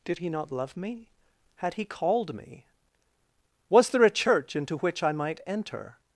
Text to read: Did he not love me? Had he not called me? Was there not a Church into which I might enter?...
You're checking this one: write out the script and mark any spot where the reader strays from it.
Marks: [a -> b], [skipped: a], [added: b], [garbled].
Did he not love me? Had he [skipped: not] called me? Was there [skipped: not] a Church into which I might enter?...